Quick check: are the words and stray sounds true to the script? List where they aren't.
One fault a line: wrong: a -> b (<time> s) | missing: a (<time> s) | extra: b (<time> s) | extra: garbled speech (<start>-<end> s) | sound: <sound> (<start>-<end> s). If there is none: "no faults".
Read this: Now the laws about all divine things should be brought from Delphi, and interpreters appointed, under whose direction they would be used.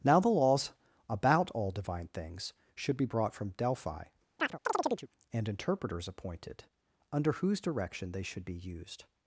sound: chirp (4.4-5.1 s)
wrong: would -> should (8.2 s)